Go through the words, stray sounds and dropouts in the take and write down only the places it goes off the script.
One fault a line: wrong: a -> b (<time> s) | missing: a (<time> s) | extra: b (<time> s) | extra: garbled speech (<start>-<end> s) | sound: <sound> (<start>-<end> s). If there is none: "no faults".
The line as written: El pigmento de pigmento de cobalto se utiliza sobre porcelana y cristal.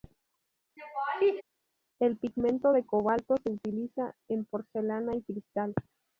sound: laugh (0.8-1.4 s)
missing: pigmento de (2.9 s)
wrong: sobre -> en (4.3 s)